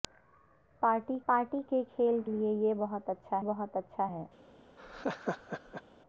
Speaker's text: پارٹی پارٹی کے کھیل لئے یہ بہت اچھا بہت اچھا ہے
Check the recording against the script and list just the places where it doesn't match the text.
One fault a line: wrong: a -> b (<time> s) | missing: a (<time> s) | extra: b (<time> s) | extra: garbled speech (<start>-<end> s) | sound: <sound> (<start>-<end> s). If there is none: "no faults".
sound: laugh (4.8-5.8 s)